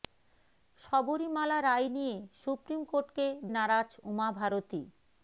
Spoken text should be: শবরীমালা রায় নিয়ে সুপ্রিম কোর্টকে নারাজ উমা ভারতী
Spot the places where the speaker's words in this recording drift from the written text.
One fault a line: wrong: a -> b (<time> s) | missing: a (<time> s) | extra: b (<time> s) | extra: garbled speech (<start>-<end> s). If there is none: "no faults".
no faults